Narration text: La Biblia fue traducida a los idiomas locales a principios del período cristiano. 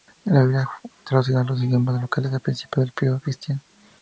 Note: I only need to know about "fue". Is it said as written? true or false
false